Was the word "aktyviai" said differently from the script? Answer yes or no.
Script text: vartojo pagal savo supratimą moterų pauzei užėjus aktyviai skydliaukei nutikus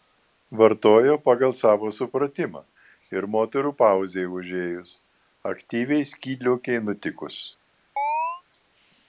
no